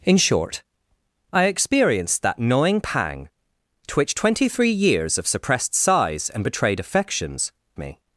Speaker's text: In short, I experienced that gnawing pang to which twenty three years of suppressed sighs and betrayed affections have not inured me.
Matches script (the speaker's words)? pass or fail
fail